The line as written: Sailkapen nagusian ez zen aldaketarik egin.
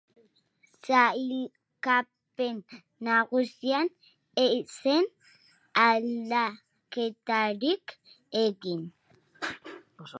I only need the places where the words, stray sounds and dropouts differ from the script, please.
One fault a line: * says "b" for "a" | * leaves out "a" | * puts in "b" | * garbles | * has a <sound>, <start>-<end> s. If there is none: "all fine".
all fine